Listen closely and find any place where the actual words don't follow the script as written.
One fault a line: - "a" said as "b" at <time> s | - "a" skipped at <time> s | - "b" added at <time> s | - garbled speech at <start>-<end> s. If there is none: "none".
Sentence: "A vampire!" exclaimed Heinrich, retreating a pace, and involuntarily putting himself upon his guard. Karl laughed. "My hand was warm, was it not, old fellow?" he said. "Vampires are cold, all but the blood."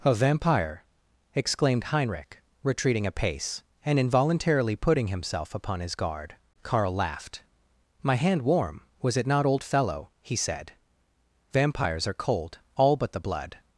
- "was" skipped at 8.4 s